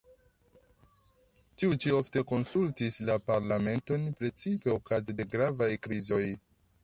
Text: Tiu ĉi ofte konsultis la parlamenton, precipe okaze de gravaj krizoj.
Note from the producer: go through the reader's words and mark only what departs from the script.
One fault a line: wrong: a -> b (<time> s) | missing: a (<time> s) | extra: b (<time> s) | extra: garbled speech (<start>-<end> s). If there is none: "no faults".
no faults